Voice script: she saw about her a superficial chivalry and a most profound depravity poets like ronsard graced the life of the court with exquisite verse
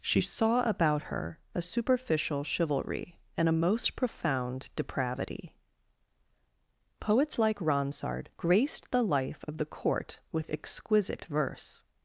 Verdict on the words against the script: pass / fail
pass